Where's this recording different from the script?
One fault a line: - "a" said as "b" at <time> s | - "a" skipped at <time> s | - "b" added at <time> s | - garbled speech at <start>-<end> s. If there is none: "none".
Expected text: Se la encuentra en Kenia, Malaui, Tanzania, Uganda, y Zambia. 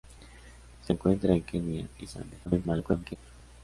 - "la" skipped at 0.9 s
- "Malaui Tanzania Uganda" skipped at 1.9 s
- garbled speech at 2.5-3.2 s